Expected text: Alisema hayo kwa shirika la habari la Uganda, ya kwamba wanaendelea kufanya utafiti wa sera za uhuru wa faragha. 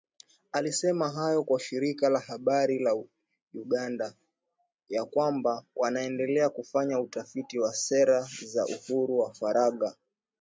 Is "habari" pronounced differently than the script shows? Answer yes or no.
no